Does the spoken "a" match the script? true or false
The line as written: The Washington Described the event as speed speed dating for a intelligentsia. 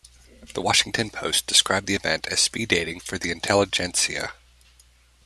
false